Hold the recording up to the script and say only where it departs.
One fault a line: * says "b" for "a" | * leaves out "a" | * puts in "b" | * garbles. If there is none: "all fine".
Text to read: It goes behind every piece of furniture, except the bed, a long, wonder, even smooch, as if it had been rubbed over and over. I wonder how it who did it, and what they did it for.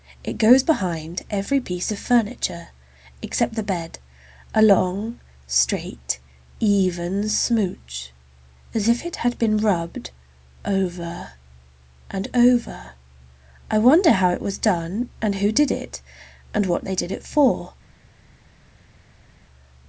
* says "straight" for "wonder"
* puts in "was done and"